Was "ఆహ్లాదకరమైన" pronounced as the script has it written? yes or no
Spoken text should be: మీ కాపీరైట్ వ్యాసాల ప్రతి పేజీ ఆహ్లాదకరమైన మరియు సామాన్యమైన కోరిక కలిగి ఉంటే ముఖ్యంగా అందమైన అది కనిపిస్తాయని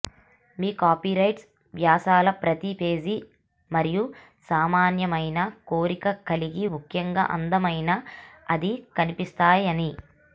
no